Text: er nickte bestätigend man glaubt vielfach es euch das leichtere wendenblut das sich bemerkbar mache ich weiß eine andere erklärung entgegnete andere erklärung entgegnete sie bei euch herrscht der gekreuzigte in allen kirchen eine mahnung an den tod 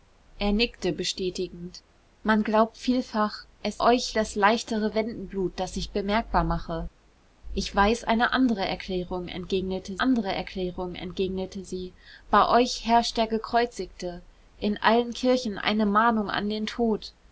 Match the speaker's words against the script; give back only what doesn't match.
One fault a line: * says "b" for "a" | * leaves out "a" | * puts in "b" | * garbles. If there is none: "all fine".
all fine